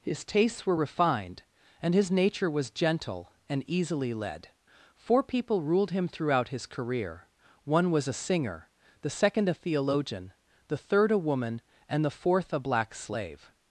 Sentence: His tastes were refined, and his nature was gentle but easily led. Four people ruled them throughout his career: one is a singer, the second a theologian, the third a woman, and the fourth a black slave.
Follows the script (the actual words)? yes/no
no